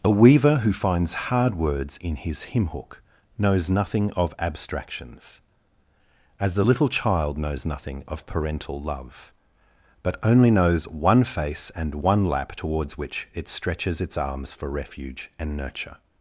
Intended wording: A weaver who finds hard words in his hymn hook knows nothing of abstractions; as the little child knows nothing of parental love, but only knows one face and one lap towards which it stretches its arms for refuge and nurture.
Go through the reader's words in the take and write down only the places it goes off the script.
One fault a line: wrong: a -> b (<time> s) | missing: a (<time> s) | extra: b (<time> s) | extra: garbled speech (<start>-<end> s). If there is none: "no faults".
no faults